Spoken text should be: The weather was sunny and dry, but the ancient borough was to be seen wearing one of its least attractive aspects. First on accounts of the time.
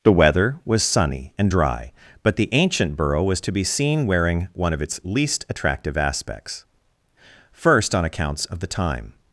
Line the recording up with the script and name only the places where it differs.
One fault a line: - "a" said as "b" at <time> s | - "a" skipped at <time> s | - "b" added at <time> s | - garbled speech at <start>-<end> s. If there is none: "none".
none